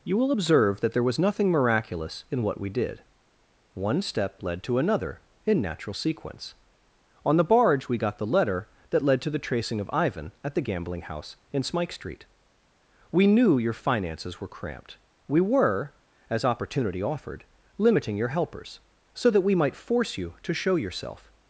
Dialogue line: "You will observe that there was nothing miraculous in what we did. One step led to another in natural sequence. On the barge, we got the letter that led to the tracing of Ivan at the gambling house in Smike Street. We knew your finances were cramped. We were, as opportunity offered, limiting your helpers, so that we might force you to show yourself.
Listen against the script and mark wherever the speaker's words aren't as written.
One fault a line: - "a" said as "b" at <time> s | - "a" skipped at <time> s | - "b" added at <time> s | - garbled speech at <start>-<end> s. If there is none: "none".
none